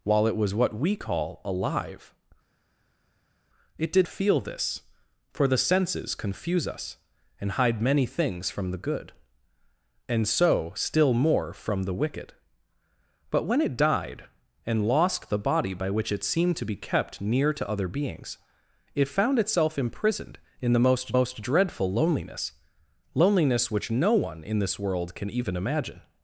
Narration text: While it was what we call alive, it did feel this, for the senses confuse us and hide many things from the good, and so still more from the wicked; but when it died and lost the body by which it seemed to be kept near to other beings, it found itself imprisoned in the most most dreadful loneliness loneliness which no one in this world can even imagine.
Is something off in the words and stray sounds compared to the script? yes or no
no